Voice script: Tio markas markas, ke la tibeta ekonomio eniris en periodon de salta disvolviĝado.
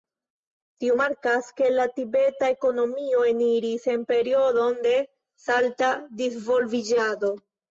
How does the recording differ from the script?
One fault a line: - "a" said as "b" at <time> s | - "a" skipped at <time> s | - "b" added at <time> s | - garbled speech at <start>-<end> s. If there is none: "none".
- "markas" skipped at 1.5 s